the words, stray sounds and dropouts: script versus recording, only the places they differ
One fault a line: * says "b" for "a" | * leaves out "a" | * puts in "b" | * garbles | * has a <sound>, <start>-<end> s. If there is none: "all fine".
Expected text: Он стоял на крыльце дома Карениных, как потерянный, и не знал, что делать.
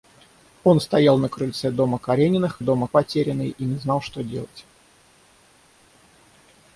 * says "дома" for "как"